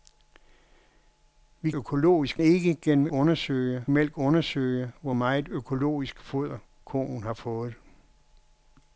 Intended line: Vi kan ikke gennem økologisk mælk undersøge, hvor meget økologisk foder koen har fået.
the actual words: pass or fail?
fail